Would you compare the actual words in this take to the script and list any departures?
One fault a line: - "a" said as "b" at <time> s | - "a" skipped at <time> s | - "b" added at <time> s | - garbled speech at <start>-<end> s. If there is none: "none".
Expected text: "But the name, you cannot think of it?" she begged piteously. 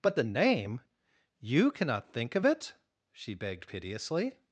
none